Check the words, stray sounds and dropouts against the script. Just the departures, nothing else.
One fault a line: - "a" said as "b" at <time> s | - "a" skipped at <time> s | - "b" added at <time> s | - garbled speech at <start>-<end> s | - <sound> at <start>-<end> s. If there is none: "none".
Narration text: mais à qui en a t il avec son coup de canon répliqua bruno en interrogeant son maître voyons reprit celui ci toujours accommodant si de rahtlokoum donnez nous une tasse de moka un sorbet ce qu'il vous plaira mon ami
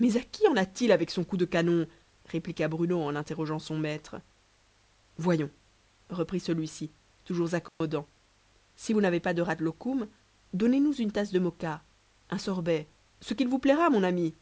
- dropout at 7.7-7.8 s
- "vous n'avez pas" added at 8.9 s